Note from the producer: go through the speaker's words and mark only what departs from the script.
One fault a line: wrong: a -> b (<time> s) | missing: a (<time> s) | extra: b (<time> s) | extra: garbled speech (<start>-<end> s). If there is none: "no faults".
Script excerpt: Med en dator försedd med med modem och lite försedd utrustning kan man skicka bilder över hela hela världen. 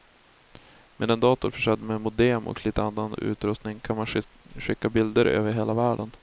missing: med (2.0 s)
wrong: försedd -> annan (2.8 s)
missing: hela (5.7 s)